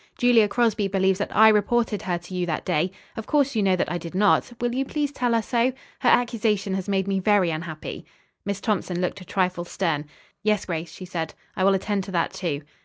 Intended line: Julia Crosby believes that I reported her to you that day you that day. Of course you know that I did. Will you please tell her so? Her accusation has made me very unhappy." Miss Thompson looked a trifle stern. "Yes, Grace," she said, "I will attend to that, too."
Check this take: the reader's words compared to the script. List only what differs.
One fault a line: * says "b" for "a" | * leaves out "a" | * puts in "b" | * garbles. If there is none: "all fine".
* leaves out "you that day"
* puts in "not"